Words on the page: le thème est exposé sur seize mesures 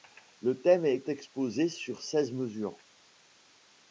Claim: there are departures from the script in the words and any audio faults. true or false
false